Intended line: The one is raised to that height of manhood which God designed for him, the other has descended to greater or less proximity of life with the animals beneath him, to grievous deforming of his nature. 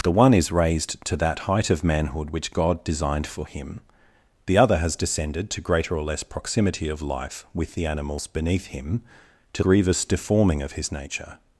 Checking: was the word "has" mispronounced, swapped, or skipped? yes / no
no